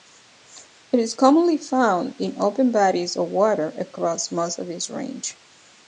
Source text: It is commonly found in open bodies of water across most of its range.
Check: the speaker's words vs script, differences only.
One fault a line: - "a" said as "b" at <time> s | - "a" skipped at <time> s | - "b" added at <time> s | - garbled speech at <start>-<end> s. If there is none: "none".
none